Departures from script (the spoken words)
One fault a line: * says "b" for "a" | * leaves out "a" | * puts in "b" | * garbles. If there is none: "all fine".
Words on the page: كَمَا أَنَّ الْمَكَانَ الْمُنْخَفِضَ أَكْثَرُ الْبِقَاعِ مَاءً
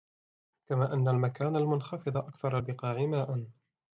all fine